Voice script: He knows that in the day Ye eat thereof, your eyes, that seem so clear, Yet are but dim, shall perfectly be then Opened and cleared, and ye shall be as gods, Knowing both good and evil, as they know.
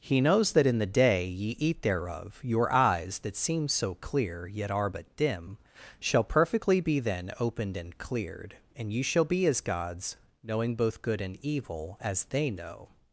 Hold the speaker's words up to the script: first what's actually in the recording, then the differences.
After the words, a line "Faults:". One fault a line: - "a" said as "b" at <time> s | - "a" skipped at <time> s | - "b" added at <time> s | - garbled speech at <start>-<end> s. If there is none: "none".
He knows that in the day Ye eat thereof, your eyes, that seem so clear, Yet are but dim, shall perfectly be then Opened and cleared, and ye shall be as gods, Knowing both good and evil, as they know.
Faults:
none